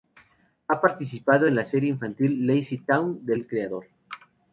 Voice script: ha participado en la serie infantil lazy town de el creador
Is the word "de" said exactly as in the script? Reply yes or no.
yes